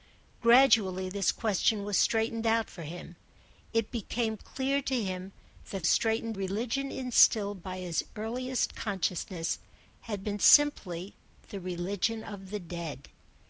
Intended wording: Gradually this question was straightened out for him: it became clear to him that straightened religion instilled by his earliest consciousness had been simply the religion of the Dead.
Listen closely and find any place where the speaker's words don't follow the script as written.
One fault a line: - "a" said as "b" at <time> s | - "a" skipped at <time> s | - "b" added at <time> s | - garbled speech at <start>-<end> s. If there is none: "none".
none